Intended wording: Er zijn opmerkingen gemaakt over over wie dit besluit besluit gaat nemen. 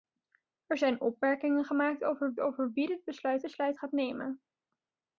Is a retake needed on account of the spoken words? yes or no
no